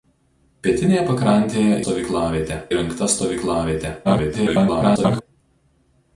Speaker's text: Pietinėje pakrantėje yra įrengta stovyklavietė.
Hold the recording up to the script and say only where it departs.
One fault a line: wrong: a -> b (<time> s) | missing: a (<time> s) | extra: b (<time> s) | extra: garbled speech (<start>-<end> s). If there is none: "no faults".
wrong: yra -> stovyklavietė (1.8 s)
extra: garbled speech (4.0-5.2 s)